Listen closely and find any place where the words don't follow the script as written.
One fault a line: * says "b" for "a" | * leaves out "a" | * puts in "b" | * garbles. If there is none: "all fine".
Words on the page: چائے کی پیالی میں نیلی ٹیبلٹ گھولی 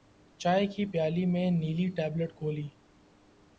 all fine